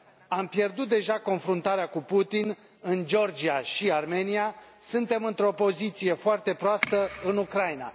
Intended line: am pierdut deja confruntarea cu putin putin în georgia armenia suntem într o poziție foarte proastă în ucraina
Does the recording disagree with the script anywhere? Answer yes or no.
yes